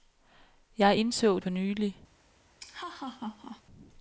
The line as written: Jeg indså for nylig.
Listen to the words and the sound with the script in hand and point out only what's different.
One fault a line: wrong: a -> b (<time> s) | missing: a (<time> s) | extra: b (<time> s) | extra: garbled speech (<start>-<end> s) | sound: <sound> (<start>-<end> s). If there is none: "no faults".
sound: laugh (2.6-3.6 s)